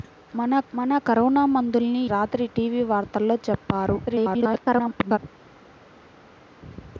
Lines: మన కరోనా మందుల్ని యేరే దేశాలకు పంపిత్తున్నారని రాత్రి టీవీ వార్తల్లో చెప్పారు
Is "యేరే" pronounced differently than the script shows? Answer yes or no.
yes